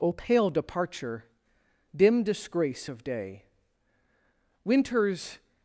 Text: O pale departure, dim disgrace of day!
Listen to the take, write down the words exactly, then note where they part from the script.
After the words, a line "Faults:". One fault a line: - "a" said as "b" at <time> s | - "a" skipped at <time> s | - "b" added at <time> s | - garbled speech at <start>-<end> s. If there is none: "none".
O pale departure, dim disgrace of day! Winter's
Faults:
- "Winter's" added at 4.7 s